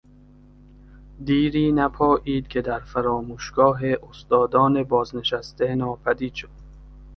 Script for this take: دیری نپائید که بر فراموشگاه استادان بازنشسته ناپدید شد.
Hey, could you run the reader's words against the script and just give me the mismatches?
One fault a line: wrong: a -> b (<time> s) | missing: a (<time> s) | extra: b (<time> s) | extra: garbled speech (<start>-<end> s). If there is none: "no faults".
wrong: بر -> در (2.6 s)